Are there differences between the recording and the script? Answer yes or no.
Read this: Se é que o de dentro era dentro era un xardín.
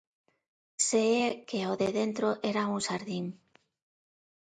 yes